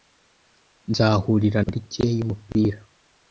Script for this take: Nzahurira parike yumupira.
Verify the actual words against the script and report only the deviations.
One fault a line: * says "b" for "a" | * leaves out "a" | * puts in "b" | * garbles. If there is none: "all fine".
all fine